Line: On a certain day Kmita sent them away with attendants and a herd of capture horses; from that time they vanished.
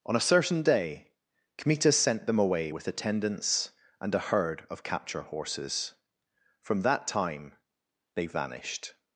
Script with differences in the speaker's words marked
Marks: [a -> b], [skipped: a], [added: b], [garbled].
On a certain day Kmita sent them away with attendants and a herd of capture horses; from that time they vanished.